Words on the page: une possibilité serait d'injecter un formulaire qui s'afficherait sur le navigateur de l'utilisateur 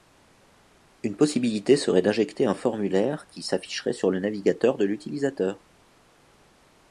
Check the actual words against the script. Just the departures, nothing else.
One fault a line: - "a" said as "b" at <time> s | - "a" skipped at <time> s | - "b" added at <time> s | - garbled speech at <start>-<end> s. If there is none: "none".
none